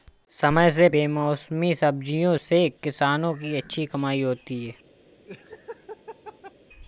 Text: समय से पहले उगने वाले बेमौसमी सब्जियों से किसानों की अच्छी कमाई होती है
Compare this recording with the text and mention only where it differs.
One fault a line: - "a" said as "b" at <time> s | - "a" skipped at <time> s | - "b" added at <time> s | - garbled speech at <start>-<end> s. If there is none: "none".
- "पहले उगने वाले" skipped at 0.9 s